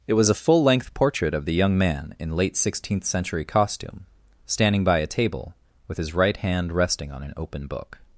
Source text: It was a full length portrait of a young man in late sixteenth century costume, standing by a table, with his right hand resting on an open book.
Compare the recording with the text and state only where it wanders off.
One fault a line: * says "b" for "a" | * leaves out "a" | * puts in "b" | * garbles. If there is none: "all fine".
* says "the" for "a"